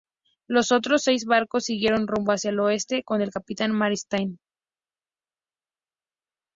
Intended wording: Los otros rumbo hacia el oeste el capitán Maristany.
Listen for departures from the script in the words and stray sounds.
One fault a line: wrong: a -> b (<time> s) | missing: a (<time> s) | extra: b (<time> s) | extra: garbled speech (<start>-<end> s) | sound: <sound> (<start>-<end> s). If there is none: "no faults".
extra: seis barcos siguieron (1.0 s)
extra: con (3.0 s)